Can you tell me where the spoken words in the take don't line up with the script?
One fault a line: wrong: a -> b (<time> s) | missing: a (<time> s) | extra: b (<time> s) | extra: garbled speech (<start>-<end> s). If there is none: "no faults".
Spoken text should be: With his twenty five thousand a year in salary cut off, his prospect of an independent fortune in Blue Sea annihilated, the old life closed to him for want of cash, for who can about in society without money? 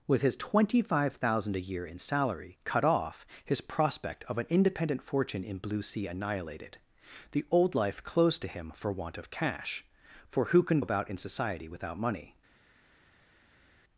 no faults